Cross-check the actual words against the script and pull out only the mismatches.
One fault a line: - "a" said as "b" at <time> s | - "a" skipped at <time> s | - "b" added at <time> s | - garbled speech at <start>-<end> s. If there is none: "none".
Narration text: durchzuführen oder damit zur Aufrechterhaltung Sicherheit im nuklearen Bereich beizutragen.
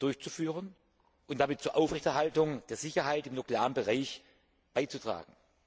- "oder" said as "und" at 1.3 s
- "der" added at 2.7 s